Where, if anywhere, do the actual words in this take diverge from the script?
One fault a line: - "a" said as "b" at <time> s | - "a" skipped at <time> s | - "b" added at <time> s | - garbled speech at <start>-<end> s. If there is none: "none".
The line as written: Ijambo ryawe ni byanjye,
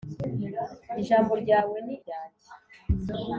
none